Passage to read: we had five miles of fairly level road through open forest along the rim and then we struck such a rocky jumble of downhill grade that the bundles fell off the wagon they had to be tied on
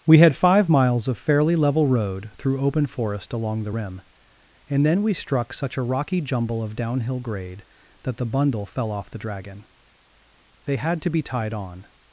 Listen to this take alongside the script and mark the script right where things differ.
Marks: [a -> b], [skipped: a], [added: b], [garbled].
we had five miles of fairly level road through open forest along the rim and then we struck such a rocky jumble of downhill grade that the [bundles -> bundle] fell off the [wagon -> dragon] they had to be tied on